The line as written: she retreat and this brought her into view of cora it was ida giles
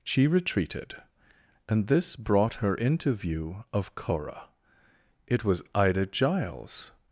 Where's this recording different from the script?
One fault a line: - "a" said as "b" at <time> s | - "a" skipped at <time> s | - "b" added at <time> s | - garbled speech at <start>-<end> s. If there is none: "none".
- "retreat" said as "retreated" at 0.3 s